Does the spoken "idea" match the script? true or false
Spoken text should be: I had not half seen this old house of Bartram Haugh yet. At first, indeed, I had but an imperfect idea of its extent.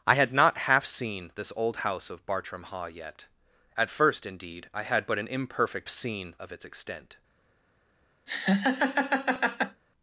false